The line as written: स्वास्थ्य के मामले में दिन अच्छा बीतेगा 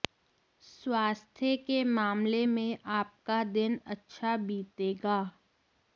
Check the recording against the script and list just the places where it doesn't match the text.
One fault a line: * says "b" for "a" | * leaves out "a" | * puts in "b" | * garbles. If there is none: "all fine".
* puts in "आपका"